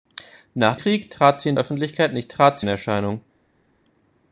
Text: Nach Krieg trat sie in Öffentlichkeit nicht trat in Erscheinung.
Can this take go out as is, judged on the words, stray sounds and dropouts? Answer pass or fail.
pass